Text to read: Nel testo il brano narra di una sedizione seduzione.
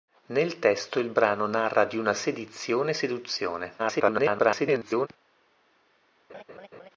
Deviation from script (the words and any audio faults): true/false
true